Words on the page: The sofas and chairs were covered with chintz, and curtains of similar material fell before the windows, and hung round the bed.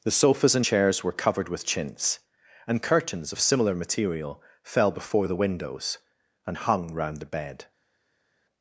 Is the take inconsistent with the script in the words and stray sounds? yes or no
no